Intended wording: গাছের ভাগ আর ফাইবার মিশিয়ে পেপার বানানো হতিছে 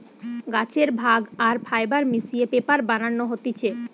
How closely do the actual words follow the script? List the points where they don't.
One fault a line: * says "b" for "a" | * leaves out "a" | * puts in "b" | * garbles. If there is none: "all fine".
all fine